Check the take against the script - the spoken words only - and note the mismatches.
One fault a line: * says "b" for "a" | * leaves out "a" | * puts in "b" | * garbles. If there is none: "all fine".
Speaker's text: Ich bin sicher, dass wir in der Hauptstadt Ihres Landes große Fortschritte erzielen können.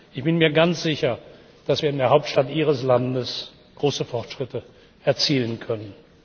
* puts in "mir ganz"